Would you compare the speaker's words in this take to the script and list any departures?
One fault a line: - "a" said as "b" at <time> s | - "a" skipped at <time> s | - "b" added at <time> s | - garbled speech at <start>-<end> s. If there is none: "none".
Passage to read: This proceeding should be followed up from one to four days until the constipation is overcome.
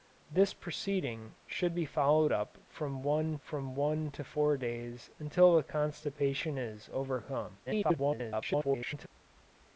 - "from one" added at 3.4 s
- garbled speech at 7.7-9.1 s